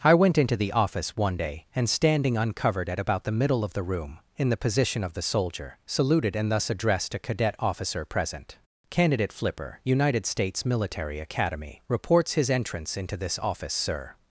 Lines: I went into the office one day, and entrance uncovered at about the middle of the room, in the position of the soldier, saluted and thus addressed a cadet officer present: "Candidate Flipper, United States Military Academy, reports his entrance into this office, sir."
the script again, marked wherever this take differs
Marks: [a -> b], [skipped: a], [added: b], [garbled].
I went into the office one day, and [entrance -> standing] uncovered at about the middle of the room, in the position of the soldier, saluted and thus addressed a cadet officer present: "Candidate Flipper, United States Military Academy, reports his entrance into this office, sir."